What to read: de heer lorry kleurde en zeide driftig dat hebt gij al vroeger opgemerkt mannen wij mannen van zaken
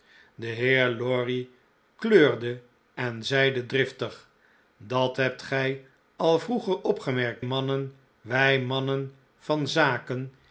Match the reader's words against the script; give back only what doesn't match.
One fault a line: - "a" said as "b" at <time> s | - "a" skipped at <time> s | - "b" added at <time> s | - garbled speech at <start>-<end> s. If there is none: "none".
none